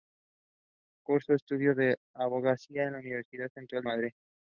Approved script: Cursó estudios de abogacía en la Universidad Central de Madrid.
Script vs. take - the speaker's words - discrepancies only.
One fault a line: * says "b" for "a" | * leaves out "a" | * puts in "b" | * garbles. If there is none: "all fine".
* leaves out "de"